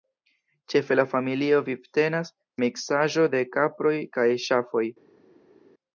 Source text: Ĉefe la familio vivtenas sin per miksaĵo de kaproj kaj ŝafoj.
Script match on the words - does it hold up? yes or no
no